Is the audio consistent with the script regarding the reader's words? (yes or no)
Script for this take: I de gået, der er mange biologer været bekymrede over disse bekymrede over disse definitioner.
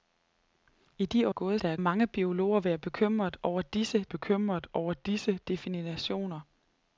yes